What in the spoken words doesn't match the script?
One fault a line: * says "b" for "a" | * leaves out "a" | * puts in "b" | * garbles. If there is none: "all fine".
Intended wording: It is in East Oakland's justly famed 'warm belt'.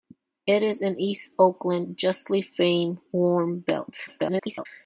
* garbles